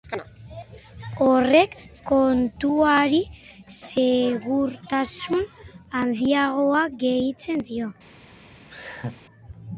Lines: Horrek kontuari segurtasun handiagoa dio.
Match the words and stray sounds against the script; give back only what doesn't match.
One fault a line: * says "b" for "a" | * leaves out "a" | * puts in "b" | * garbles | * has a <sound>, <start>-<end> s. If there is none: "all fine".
* puts in "gehitzen"
* has a laugh, 8.7-9.2 s